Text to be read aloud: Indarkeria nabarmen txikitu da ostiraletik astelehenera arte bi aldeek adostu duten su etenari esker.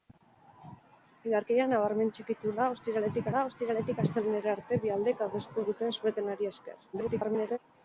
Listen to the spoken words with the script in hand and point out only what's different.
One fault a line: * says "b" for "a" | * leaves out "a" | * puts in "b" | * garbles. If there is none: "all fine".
* puts in "da ostiraletik"
* garbles